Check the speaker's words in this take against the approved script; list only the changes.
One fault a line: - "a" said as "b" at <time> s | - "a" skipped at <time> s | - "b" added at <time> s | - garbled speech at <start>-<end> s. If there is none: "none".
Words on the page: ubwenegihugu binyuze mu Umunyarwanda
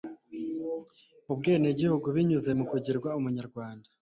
- "kugirwa" added at 2.7 s